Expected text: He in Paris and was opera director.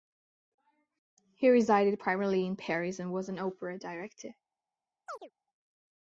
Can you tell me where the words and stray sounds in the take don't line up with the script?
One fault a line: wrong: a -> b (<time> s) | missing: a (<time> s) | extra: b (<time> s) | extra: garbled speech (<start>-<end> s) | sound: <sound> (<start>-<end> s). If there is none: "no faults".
extra: resided primarily (1.5 s)
extra: an (3.3 s)
sound: chirp (5.1-5.3 s)